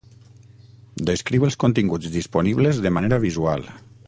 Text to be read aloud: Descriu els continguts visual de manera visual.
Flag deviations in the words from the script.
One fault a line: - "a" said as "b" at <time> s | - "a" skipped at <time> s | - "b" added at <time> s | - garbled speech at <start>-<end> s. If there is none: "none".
- "visual" said as "disponibles" at 2.2 s